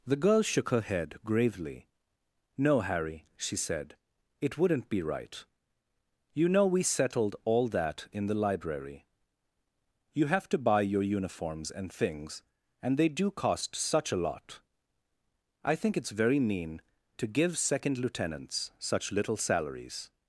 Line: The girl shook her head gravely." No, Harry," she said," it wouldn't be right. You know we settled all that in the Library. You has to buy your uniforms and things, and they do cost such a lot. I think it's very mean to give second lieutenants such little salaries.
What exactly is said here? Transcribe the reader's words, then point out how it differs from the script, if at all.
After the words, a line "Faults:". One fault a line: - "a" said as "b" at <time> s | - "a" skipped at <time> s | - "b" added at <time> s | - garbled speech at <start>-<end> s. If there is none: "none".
The girl shook her head gravely." No, Harry," she said," it wouldn't be right. You know we settled all that in the Library. You have to buy your uniforms and things, and they do cost such a lot. I think it's very mean to give second lieutenants such little salaries.
Faults:
- "has" said as "have" at 10.2 s